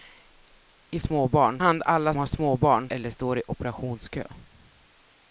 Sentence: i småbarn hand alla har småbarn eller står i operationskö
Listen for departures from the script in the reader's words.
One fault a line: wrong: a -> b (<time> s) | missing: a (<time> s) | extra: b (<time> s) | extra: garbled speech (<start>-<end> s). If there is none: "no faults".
no faults